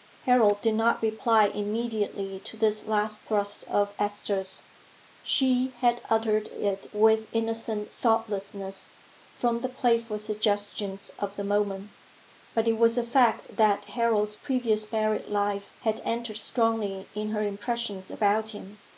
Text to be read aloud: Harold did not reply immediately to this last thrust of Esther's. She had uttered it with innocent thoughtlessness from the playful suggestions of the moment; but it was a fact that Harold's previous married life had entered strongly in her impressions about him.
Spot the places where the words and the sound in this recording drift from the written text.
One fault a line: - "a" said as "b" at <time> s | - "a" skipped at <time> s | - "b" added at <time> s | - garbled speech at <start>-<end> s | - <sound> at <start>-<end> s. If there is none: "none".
none